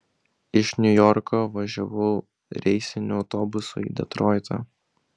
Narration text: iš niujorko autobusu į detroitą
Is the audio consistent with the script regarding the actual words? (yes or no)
no